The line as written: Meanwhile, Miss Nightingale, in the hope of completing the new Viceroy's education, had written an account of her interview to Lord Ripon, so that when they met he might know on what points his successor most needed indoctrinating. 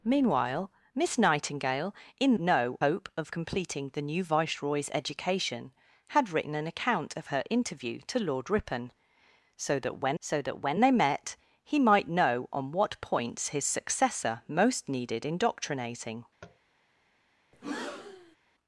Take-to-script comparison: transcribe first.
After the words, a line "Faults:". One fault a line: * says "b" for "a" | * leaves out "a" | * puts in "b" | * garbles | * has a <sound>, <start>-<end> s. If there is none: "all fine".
Meanwhile, Miss Nightingale, in know hope of completing the new Viceroy's education, had written an account of her interview to Lord Ripon, so that when so that when they met he might know on what points his successor most needed indoctrinating.
Faults:
* says "know" for "the"
* puts in "so that when"
* has a tap, 16.4-16.6 s
* has a breath, 17.5-18.4 s